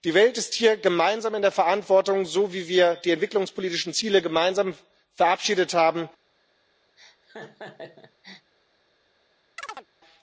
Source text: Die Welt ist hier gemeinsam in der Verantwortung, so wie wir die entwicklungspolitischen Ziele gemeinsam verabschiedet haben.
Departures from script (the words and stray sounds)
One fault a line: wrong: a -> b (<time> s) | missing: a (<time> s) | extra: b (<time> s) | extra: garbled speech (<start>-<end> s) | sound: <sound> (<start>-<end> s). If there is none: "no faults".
sound: laugh (7.0-8.5 s)
sound: chirp (9.6-9.9 s)